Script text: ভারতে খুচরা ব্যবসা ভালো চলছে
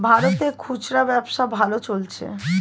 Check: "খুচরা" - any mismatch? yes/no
no